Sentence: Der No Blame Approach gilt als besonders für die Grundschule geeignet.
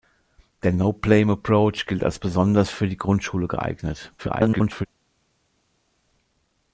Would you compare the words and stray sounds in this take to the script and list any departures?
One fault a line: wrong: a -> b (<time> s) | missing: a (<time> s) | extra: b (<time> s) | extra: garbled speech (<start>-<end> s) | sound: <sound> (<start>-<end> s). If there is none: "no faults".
extra: garbled speech (4.2-4.9 s)